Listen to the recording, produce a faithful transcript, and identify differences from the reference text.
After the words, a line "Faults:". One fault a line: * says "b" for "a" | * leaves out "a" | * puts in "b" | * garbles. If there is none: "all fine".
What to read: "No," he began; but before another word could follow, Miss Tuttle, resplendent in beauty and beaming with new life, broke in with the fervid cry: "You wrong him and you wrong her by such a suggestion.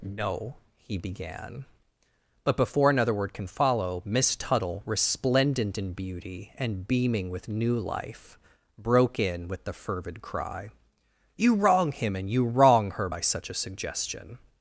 "No," he began; but before another word can follow, Miss Tuttle, resplendent in beauty and beaming with new life, broke in with the fervid cry: "You wrong him and you wrong her by such a suggestion.
Faults:
* says "can" for "could"